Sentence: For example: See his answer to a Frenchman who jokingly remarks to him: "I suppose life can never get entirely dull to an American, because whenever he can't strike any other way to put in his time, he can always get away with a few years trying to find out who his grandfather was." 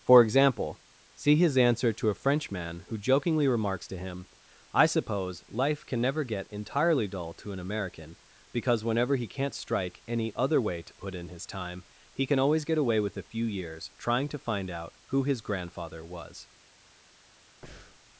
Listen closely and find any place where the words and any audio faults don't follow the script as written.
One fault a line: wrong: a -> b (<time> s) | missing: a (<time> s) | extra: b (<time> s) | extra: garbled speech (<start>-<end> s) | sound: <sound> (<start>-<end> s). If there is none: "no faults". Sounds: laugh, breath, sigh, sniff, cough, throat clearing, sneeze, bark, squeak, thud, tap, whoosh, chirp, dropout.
sound: breath (17.6-18.0 s)